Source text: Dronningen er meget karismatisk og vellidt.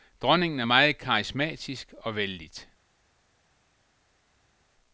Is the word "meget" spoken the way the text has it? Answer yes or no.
yes